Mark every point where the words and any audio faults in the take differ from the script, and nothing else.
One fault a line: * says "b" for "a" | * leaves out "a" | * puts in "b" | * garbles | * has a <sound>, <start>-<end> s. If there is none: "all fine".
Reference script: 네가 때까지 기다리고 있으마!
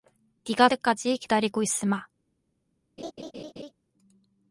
* has a laugh, 3.0-3.7 s